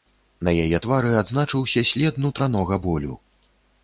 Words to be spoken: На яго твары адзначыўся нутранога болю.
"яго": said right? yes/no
no